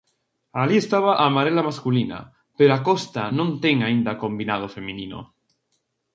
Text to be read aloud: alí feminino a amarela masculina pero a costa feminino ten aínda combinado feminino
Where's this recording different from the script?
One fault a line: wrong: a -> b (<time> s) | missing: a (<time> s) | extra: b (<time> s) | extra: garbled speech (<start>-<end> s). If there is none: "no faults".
wrong: feminino -> estaba (0.8 s)
wrong: feminino -> non (3.4 s)